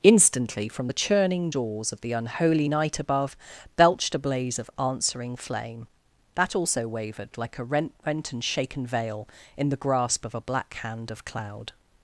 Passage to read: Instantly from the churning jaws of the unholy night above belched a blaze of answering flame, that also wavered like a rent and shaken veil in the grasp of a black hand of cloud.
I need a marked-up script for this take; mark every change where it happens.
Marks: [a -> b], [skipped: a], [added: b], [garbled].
Instantly from the churning jaws of the unholy night above belched a blaze of answering flame, that also wavered like a rent [added: rent] and shaken veil in the grasp of a black hand of cloud.